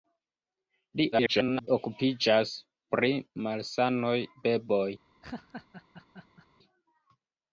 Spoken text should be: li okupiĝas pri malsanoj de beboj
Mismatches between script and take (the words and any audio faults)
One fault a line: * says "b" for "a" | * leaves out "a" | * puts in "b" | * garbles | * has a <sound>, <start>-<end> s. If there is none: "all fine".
* garbles
* leaves out "de"
* has a laugh, 5.2-6.5 s